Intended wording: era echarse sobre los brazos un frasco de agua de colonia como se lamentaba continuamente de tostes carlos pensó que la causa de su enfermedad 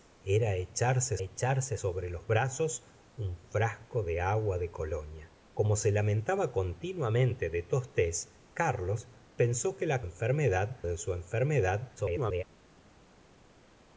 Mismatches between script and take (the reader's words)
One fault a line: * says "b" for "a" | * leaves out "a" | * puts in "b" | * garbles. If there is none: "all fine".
* puts in "echarse"
* says "enfermedad" for "causa"
* garbles